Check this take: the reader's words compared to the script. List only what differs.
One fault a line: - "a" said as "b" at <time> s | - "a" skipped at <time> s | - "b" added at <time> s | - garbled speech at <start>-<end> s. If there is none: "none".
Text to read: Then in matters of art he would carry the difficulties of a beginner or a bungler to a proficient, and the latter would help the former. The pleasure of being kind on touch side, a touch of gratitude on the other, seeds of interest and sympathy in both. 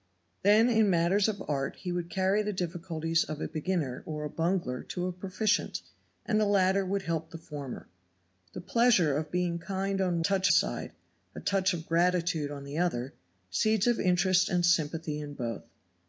none